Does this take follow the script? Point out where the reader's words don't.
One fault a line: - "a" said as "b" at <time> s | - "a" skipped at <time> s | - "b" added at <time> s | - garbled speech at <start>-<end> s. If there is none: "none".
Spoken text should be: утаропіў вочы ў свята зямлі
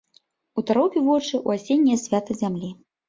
- "асенняе" added at 1.6 s